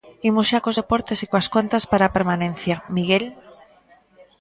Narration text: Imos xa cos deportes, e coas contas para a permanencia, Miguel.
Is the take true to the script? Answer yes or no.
yes